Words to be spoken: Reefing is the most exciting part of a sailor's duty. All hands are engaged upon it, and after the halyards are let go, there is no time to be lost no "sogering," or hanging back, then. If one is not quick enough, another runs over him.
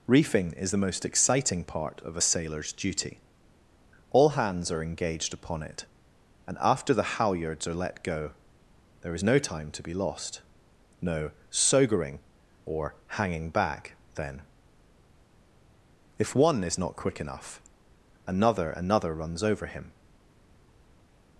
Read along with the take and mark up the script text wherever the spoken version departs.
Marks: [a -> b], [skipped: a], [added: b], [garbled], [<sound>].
Reefing is the most exciting part of a sailor's duty. All hands are engaged upon it, and after the halyards are let go, there is no time to be lost no "sogering," or hanging back, then. If one is not quick enough, another [added: another] runs over him.